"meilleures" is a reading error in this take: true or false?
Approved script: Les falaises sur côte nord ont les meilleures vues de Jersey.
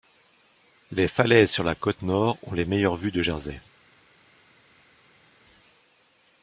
false